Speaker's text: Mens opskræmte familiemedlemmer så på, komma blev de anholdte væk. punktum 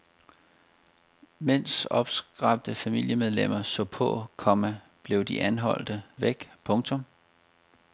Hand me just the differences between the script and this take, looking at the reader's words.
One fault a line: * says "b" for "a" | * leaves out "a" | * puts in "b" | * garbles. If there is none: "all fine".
all fine